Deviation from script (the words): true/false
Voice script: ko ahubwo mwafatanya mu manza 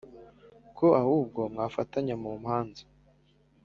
false